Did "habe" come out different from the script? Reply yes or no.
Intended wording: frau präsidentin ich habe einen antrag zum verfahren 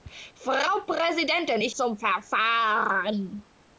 yes